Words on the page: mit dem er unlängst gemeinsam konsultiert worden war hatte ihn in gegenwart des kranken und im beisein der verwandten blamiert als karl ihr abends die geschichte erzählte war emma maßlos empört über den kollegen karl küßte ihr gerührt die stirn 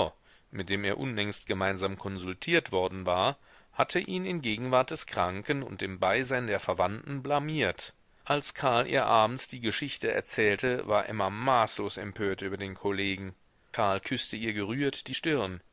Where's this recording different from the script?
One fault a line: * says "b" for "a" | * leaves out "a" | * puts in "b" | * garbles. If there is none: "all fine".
all fine